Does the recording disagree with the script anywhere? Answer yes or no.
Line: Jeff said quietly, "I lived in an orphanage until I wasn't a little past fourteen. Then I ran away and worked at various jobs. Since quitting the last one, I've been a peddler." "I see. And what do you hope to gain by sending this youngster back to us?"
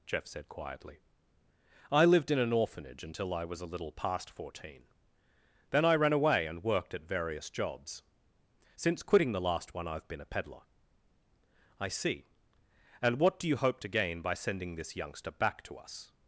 yes